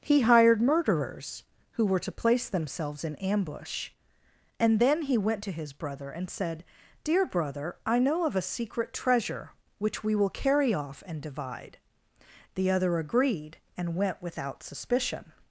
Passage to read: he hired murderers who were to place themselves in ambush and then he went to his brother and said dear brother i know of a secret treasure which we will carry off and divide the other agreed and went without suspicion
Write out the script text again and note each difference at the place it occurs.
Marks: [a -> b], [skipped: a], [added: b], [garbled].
he hired murderers who were to place themselves in ambush and then he went to his brother and said dear brother i know of a secret treasure which we will carry off and divide the other agreed and went without suspicion